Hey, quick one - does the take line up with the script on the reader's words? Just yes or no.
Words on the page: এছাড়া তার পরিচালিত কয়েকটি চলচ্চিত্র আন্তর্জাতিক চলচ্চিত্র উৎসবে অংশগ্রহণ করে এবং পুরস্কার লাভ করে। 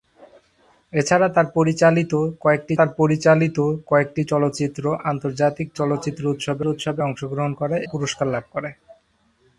no